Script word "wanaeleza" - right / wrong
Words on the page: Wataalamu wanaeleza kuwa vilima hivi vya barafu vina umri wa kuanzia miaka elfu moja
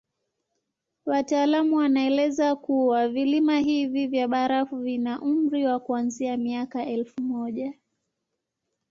right